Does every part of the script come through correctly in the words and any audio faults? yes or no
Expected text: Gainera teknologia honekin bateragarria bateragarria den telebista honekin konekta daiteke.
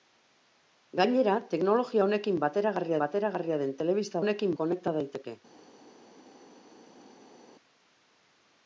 yes